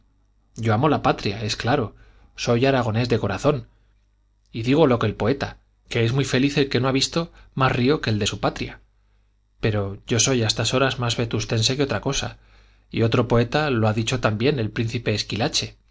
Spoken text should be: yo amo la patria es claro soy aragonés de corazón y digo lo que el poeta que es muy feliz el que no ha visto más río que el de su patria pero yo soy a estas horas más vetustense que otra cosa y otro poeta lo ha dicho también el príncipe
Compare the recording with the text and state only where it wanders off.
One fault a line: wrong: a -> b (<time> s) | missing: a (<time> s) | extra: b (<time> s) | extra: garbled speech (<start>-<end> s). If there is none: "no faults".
no faults